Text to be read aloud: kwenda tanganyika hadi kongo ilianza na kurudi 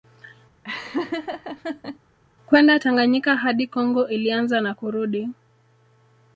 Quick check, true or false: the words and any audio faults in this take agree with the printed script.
false